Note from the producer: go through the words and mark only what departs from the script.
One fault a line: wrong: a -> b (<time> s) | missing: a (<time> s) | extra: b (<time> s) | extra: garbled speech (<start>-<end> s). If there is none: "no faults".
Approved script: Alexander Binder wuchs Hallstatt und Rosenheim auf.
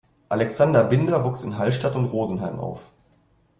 extra: in (1.4 s)